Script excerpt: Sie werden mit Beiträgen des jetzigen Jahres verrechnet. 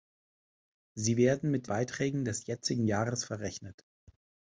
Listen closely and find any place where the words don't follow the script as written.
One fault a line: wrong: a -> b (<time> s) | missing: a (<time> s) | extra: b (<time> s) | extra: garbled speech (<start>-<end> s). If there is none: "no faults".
no faults